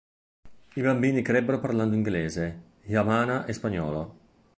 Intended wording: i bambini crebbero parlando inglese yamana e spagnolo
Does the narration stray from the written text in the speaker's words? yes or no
no